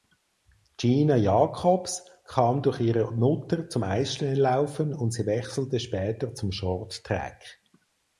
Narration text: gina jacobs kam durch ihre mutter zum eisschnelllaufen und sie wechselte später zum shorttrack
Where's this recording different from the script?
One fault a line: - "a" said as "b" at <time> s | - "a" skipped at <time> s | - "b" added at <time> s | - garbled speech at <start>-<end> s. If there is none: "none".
none